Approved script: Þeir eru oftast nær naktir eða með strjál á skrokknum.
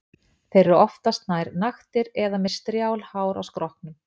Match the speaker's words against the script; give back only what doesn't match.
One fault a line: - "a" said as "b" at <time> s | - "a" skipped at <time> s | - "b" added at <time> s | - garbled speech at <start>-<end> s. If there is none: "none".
- "hár" added at 3.1 s